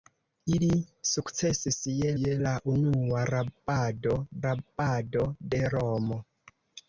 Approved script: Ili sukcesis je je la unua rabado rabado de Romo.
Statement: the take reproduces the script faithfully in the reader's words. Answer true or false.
true